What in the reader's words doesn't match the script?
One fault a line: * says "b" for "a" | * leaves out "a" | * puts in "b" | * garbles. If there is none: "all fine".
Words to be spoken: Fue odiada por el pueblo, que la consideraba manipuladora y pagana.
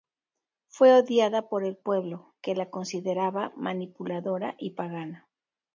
all fine